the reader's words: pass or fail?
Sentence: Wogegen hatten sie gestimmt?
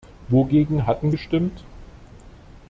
fail